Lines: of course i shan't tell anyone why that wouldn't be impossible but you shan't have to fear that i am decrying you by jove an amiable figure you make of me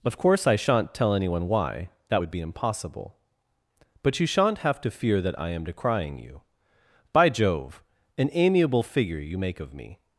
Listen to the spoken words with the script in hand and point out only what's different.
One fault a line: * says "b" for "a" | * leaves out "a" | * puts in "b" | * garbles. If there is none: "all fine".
* says "would" for "wouldn't"